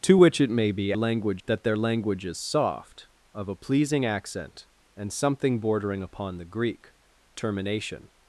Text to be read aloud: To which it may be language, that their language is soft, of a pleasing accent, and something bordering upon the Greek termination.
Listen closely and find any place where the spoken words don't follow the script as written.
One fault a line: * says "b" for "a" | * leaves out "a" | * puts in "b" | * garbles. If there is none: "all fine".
all fine